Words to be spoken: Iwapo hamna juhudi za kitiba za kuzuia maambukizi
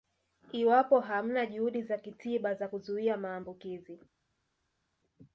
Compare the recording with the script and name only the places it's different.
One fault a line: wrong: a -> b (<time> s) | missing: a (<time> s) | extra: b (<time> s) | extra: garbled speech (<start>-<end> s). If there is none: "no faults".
no faults